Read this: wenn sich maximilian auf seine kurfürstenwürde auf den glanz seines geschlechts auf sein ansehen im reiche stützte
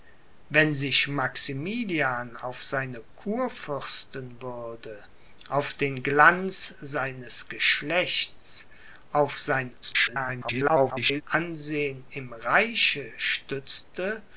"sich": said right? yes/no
yes